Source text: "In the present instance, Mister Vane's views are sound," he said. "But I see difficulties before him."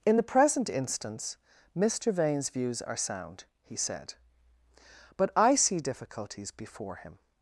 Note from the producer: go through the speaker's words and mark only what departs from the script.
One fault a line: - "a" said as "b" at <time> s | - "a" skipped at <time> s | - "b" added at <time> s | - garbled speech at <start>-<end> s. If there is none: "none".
none